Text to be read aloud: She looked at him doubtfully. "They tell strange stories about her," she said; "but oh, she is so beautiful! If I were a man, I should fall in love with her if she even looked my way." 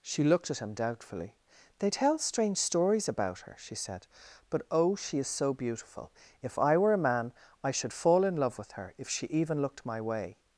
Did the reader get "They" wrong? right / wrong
right